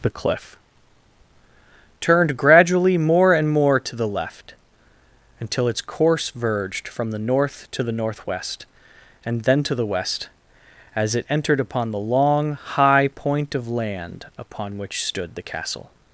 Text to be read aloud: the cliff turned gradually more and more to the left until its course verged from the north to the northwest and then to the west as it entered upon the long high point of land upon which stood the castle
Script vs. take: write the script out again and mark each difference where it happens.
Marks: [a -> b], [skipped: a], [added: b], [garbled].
the cliff turned gradually more and more to the left until its course verged from the north to the northwest and then to the west as it entered upon the long high point of land upon which stood the castle